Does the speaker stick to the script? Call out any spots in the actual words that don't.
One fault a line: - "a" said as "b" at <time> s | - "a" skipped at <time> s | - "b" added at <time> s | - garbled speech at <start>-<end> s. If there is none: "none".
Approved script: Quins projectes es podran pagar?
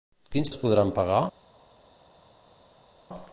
- "projectes" skipped at 0.5 s